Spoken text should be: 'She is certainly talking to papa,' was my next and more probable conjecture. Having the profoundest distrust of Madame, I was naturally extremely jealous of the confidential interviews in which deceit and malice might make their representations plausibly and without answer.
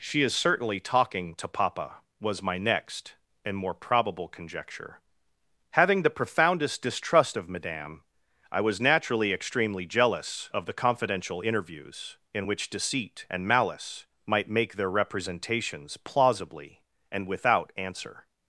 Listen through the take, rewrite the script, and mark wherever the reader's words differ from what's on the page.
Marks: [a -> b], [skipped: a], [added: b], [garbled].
'She is certainly talking to papa,' was my next and more probable conjecture. Having the profoundest distrust of Madame, I was naturally extremely jealous of the confidential interviews in which deceit and malice might make their representations plausibly and without answer.